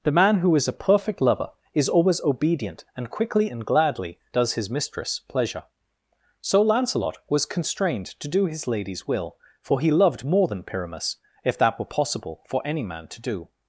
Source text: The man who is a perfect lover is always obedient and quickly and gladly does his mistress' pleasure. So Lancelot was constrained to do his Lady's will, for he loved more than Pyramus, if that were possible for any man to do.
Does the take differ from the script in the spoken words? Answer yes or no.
no